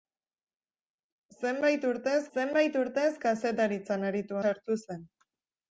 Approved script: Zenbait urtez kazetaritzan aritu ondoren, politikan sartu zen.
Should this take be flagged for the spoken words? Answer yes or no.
yes